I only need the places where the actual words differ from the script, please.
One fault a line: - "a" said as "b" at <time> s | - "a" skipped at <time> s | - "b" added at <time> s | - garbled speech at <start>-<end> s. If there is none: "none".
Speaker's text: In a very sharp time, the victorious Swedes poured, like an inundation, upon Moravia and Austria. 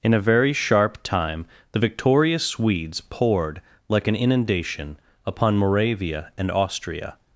none